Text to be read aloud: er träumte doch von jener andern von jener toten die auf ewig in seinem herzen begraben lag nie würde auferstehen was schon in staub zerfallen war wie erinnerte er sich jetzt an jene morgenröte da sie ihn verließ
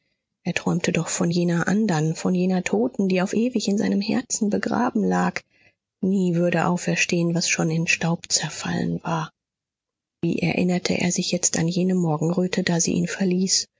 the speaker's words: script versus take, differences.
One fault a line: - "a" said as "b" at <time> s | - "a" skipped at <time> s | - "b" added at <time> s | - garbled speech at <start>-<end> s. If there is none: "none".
none